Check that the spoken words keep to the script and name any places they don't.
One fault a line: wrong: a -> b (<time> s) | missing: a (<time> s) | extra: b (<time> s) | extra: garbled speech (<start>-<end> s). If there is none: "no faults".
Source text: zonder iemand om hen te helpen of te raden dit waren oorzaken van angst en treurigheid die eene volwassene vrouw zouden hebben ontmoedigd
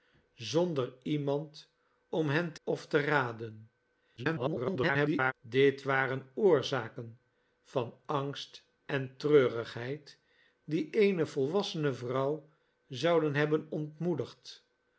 missing: helpen (2.6 s)
extra: garbled speech (4.2-5.3 s)